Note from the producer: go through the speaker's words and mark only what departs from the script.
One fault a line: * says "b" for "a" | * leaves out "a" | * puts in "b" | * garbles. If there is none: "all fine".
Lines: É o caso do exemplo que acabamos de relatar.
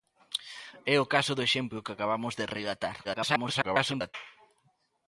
* garbles